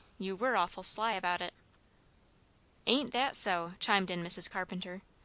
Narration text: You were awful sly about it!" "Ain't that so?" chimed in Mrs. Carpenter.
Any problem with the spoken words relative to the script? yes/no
no